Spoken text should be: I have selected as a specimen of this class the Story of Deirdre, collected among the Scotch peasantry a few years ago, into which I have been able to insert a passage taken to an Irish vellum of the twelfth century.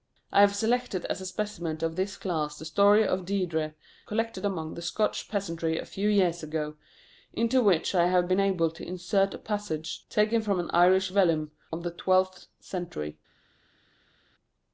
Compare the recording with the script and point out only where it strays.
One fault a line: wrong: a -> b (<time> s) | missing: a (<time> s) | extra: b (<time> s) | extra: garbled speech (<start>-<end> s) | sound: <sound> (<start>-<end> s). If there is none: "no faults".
wrong: to -> from (10.4 s)